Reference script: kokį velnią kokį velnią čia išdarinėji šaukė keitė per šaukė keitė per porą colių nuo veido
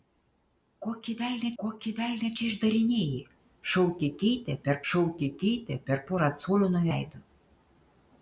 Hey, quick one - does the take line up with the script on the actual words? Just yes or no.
yes